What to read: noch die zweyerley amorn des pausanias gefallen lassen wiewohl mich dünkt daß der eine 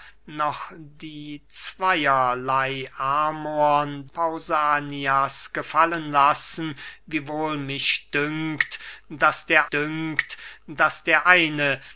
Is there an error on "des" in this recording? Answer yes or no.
yes